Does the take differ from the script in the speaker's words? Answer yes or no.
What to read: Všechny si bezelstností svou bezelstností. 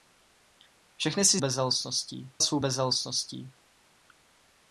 no